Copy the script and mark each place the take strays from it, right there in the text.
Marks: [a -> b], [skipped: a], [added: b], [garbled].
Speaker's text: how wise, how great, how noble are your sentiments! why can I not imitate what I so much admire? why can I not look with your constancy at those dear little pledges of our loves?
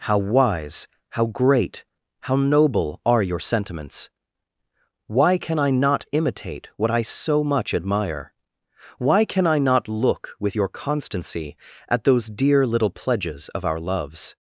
how wise, how great, how noble are your sentiments! why can I not imitate what I so much admire? why can I not look with your constancy at those dear little pledges of our loves?